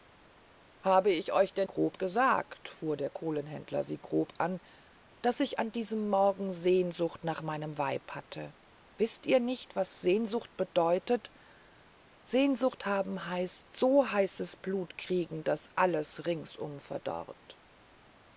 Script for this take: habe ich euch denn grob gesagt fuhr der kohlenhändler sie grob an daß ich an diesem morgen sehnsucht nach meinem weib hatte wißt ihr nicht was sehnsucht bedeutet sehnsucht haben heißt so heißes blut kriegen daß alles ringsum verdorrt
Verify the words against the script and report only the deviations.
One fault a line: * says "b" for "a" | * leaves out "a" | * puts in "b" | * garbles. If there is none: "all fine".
all fine